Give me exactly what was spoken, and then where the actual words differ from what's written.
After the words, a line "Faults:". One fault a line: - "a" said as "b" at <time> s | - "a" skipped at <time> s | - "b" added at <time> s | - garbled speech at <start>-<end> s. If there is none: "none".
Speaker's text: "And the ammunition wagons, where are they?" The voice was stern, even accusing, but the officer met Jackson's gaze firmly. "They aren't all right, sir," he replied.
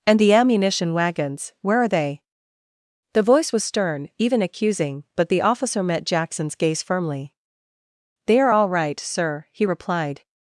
"And the ammunition wagons, where are they?" The voice was stern, even accusing, but the officer met Jackson's gaze firmly. "They are all right, sir," he replied.
Faults:
- "aren't" said as "are" at 8.4 s